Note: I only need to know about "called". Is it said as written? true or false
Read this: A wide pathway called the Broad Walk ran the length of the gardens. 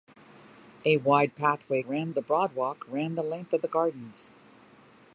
false